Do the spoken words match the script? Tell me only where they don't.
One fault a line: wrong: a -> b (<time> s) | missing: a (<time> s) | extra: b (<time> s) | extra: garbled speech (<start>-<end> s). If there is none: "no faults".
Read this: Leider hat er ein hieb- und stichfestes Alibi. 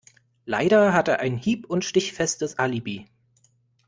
no faults